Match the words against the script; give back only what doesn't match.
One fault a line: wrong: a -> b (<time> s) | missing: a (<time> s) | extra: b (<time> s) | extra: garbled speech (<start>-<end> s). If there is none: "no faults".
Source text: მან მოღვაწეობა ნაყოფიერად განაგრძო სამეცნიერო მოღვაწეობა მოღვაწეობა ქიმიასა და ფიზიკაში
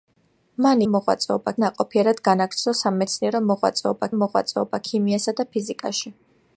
no faults